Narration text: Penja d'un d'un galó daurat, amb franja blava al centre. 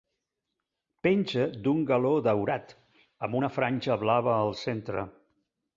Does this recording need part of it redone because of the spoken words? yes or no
yes